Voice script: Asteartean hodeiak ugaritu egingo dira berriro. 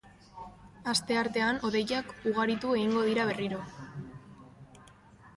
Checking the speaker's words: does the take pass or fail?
pass